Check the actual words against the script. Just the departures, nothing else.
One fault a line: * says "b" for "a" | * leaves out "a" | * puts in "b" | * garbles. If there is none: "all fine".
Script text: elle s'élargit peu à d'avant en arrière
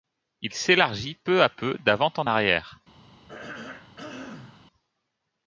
* says "il" for "elle"
* puts in "peu"